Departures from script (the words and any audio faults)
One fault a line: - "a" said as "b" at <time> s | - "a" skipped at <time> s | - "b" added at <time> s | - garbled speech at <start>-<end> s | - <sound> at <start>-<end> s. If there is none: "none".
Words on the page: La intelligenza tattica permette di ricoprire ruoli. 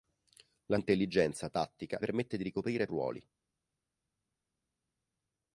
none